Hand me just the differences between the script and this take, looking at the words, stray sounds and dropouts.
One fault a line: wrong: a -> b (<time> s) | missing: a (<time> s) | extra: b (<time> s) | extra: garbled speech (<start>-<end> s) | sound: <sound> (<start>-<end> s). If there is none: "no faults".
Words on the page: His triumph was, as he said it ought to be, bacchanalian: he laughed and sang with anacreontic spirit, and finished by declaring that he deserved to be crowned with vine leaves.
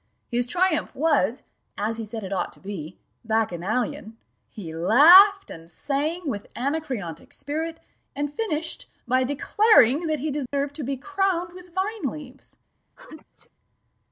sound: dropout (10.5-10.5 s)
sound: sneeze (13.0-13.5 s)